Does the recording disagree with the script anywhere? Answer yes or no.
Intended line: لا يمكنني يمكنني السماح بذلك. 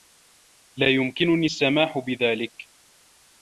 yes